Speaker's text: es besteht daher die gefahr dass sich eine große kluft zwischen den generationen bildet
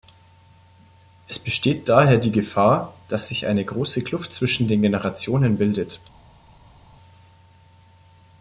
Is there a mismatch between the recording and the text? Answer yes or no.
no